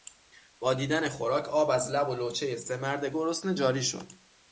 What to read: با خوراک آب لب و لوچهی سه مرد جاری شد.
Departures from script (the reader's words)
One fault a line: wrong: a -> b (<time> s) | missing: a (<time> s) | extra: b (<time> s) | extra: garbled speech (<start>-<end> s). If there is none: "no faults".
extra: دیدن (0.7 s)
extra: از (1.7 s)
extra: گرسنه (3.0 s)